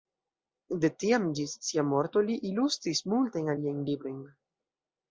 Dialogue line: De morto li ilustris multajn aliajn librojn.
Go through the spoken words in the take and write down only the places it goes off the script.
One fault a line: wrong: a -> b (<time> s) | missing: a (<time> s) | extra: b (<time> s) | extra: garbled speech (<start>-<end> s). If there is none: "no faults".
extra: tiam ĝis sia (1.0 s)